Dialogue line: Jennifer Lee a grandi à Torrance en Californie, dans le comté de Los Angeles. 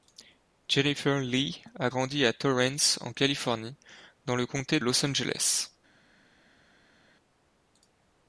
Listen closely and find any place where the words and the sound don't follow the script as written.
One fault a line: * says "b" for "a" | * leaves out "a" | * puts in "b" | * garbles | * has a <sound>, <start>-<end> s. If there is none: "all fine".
* leaves out "de"